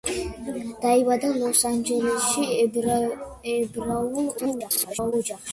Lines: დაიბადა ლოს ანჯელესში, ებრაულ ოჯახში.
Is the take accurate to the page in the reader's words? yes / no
no